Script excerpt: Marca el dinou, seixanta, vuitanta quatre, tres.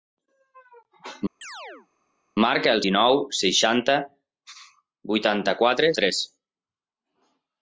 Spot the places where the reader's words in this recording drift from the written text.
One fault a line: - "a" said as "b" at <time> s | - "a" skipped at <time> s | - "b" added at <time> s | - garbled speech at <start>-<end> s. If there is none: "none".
none